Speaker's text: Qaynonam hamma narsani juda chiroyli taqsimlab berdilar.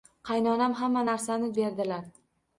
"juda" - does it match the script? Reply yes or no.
no